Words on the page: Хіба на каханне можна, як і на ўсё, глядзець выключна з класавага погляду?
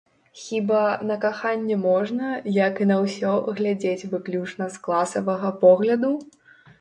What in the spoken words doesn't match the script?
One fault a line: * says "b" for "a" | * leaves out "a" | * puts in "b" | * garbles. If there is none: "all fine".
all fine